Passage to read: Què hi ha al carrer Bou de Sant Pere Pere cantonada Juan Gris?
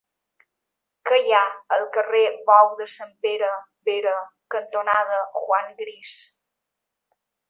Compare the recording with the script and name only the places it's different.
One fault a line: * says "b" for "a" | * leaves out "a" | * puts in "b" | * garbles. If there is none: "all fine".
all fine